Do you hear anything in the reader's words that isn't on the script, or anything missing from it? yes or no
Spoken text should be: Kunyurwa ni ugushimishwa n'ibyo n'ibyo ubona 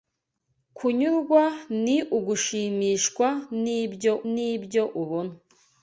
no